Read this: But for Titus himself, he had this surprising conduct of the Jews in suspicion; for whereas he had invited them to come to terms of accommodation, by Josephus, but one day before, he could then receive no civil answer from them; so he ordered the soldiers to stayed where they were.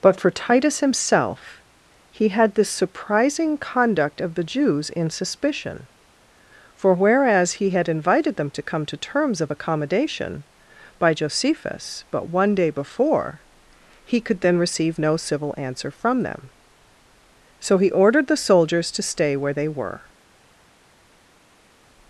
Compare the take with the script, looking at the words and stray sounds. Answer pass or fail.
fail